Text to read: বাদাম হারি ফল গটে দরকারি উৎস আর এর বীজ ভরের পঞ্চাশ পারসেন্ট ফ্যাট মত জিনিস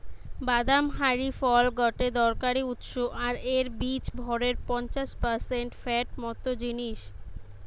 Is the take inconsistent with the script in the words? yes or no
no